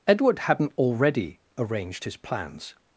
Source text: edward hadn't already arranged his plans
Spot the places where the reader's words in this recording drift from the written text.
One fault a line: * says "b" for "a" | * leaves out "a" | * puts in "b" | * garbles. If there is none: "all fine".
all fine